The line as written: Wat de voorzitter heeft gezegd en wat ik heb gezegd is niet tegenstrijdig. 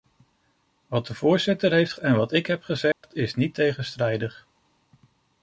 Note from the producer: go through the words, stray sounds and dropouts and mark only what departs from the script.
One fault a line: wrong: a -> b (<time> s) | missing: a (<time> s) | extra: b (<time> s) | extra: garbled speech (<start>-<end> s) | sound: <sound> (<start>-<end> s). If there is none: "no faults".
missing: gezegd (1.9 s)
sound: dropout (2.9-3.0 s)